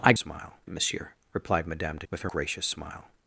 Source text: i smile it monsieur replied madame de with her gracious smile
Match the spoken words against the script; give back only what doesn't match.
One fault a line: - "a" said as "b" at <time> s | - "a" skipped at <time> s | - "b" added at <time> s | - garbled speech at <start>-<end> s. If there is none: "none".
none